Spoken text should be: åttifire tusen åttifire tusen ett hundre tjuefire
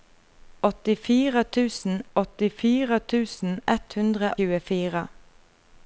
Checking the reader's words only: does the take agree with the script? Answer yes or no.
yes